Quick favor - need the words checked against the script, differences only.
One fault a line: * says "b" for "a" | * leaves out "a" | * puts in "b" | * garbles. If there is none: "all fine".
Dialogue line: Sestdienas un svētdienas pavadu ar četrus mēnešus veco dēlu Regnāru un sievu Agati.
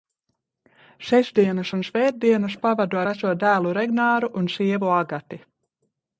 * leaves out "ar četrus mēnešus"